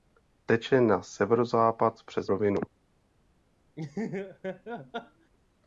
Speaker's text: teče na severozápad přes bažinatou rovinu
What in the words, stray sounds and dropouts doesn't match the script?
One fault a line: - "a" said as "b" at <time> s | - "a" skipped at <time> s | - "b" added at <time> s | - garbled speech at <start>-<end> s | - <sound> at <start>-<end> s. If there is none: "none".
- "bažinatou" skipped at 2.3 s
- laugh at 3.8-5.3 s